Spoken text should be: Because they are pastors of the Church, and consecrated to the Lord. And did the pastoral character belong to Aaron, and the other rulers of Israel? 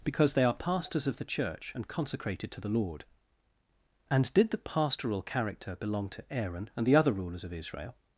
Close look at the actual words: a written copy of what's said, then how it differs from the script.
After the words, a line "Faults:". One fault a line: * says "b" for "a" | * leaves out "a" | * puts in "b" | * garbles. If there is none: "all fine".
Because they are pastors of the Church, and consecrated to the Lord. And did the pastoral character belong to Aaron, and the other rulers of Israel?
Faults:
all fine